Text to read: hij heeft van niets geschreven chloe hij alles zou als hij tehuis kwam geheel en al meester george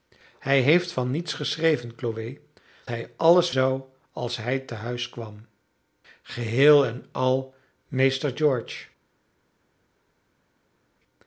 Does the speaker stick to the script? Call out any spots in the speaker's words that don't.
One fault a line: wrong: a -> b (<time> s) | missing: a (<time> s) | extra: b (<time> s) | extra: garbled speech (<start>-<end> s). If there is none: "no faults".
no faults